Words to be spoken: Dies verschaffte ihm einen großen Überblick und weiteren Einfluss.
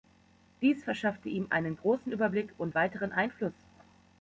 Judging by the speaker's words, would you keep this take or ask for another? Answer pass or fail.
pass